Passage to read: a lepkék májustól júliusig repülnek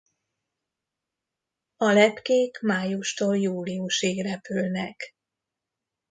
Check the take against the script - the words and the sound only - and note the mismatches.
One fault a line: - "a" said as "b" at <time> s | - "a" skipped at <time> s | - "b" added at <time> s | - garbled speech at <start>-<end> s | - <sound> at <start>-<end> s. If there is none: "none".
none